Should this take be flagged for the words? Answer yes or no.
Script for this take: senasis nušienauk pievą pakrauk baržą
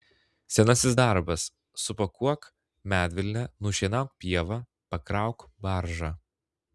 yes